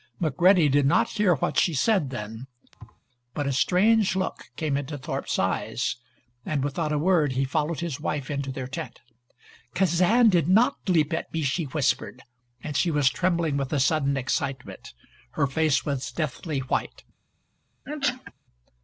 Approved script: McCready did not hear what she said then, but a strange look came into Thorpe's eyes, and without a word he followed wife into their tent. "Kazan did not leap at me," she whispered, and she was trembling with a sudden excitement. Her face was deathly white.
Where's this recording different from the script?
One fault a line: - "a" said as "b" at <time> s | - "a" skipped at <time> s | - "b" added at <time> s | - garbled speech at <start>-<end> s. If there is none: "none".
- "his" added at 7.8 s